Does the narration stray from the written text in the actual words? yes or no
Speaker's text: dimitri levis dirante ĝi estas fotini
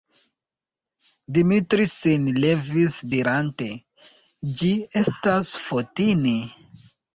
yes